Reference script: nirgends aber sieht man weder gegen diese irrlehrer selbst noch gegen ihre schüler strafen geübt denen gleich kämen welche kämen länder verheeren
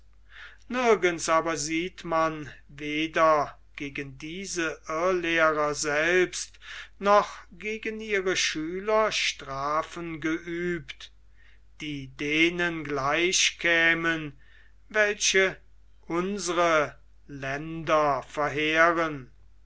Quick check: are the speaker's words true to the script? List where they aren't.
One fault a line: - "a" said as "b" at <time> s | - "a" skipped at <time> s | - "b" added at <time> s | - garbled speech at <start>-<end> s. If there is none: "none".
- "die" added at 11.8 s
- "kämen" said as "unsre" at 16.1 s